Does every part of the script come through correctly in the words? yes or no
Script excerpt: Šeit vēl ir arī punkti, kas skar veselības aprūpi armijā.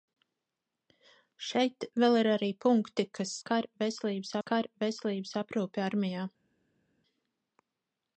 no